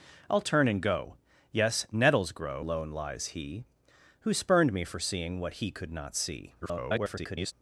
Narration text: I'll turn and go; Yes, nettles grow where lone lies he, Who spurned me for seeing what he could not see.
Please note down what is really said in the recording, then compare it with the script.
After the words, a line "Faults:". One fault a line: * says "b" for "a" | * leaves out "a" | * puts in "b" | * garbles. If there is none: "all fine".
I'll turn and go; Yes, nettles grow lone lies he, Who spurned me for seeing what he could not see. [garbled]
Faults:
* leaves out "where"
* garbles